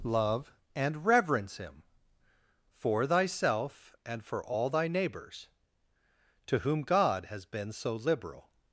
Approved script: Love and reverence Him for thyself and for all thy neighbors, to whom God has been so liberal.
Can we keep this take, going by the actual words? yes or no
yes